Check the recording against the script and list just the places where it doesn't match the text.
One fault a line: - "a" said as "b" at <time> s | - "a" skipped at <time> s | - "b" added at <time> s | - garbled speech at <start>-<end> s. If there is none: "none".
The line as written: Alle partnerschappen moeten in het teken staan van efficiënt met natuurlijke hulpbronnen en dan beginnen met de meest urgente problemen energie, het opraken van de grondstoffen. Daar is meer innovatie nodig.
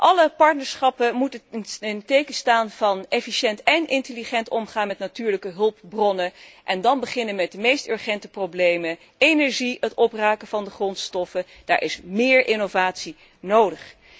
- "en intelligent omgaan" added at 3.6 s